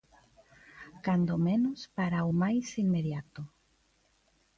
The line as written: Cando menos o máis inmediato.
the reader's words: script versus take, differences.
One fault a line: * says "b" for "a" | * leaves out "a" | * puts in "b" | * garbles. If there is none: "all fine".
* puts in "para"